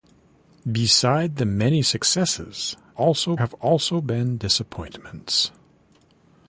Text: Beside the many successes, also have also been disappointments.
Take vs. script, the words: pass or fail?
pass